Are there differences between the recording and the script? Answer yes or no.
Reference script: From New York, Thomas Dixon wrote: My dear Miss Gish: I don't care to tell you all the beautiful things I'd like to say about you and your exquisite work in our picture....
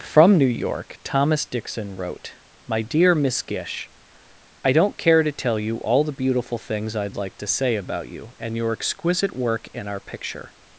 no